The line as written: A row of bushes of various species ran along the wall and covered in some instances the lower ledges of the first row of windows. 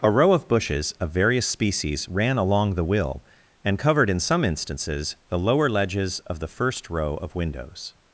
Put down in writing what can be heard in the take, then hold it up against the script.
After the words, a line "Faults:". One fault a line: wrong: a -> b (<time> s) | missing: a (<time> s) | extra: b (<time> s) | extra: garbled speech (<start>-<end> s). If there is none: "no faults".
A row of bushes of various species ran along the will and covered in some instances the lower ledges of the first row of windows.
Faults:
wrong: wall -> will (2.8 s)